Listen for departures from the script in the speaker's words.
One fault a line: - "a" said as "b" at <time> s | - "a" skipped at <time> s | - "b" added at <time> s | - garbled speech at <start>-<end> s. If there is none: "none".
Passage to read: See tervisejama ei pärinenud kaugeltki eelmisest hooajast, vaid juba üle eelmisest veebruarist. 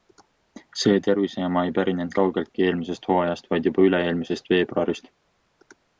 none